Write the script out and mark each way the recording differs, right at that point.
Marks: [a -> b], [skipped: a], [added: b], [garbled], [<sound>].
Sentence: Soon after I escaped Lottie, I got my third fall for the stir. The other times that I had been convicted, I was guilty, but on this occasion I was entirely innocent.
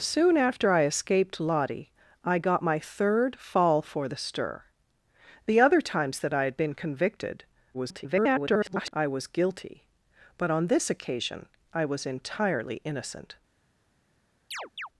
Soon after I escaped Lottie, I got my third fall for the stir. The other times that I had been convicted, [garbled] I was guilty, but on this occasion I was entirely innocent. [chirp]